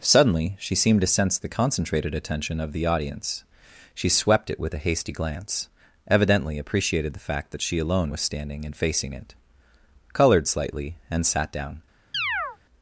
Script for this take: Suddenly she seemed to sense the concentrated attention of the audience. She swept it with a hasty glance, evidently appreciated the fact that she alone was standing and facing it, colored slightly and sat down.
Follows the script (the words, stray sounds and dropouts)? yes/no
no